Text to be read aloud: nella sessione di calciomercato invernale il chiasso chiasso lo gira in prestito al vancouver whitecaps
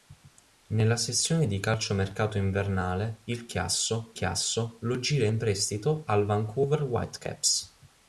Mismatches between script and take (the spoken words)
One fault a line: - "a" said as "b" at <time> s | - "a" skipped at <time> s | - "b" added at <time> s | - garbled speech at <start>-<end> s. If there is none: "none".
none